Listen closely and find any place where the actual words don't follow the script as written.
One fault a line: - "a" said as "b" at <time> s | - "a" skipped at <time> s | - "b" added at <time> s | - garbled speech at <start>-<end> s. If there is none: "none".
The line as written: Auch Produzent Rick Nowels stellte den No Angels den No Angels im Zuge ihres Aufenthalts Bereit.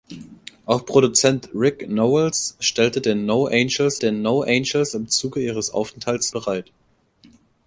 none